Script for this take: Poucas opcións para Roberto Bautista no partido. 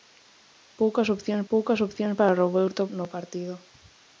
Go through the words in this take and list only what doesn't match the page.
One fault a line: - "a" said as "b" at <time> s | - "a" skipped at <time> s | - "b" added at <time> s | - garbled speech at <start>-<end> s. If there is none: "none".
- "poucas opcións" added at 1.5 s
- "Bautista" skipped at 2.8 s